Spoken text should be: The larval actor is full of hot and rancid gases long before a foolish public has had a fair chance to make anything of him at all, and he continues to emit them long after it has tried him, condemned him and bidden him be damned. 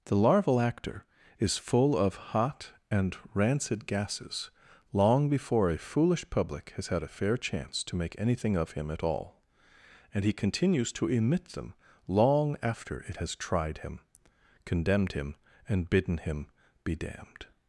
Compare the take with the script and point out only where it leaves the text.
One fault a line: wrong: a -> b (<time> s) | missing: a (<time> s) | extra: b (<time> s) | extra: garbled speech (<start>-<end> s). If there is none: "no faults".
no faults